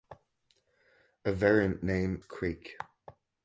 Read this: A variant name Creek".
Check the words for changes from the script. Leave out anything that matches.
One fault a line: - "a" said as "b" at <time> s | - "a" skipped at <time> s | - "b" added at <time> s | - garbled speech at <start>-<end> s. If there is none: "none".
none